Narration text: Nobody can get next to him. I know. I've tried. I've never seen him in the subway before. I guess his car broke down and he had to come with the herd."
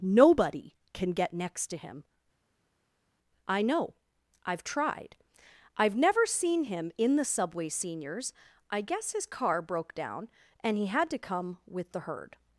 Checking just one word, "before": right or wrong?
wrong